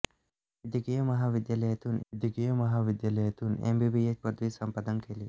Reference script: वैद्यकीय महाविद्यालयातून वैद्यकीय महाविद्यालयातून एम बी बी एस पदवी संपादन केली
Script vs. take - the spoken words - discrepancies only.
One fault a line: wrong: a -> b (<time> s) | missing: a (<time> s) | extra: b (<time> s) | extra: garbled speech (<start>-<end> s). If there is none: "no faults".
no faults